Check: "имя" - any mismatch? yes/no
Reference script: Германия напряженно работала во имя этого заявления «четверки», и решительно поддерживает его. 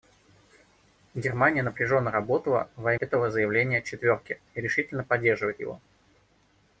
yes